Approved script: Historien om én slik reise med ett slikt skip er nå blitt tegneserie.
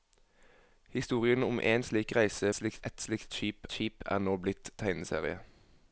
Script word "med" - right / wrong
wrong